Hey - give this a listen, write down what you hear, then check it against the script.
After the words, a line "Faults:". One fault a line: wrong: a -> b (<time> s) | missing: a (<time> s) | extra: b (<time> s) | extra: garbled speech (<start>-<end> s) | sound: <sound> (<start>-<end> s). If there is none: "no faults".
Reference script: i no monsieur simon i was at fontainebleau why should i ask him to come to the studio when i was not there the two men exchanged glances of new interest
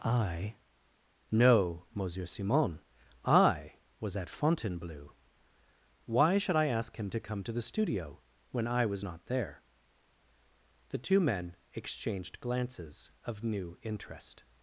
i no monsieur simon i was at fontainebleau why should i ask him to come to the studio when i was not there the two men exchanged glances of new interest
Faults:
no faults